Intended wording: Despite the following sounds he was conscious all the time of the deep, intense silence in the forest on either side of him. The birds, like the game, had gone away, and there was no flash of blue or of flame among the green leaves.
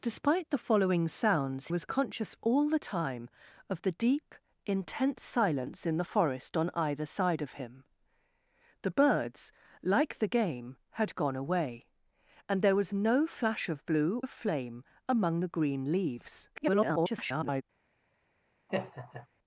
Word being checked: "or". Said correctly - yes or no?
no